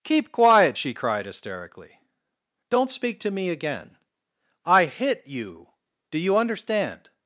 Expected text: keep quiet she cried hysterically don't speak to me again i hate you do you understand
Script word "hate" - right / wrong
wrong